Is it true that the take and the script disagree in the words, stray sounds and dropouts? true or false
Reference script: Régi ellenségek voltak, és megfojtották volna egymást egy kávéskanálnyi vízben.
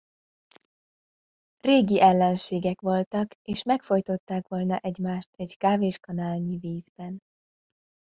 false